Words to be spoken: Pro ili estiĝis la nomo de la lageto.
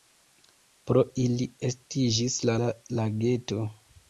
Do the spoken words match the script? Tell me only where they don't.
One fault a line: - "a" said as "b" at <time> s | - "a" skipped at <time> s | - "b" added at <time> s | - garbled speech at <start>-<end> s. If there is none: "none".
- "nomo de" skipped at 2.6 s